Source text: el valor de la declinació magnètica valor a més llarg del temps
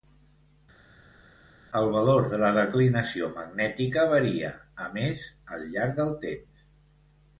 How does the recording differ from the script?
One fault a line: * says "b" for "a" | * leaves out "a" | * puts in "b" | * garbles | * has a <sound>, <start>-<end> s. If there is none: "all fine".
* says "varia" for "valor"
* puts in "al"